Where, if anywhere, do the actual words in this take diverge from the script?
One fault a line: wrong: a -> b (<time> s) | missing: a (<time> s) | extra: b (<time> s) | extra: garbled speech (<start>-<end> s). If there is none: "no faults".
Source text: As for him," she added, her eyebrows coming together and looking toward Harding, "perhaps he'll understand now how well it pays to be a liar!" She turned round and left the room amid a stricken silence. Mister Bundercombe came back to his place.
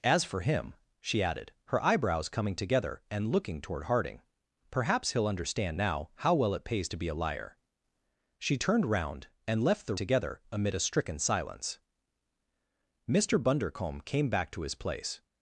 wrong: room -> together (9.9 s)